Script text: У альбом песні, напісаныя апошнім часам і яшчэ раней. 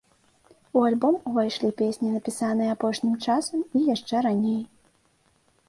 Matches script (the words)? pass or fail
fail